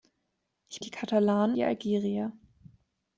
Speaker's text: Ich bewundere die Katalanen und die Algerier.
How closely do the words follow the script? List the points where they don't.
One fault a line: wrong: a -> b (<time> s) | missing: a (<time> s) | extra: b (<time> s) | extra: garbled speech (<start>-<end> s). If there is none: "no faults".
missing: bewundere (0.8 s)
missing: und (1.6 s)